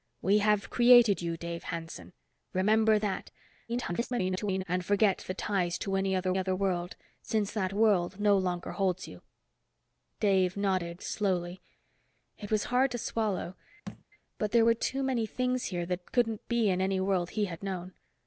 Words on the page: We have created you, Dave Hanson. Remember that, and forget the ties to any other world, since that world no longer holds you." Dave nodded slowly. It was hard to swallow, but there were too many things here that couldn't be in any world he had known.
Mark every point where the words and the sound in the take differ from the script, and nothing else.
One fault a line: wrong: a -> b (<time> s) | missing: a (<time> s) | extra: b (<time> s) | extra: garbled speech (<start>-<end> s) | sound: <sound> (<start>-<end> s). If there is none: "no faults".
extra: garbled speech (3.7-4.6 s)
extra: other (6.4 s)
sound: thud (13.9-14.0 s)